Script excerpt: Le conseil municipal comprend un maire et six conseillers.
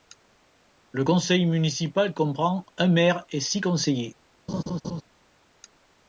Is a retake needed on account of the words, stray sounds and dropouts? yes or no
yes